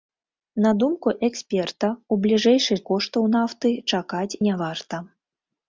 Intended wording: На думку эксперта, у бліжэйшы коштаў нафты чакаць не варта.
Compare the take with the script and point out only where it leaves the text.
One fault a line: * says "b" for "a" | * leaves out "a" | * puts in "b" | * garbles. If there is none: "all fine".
all fine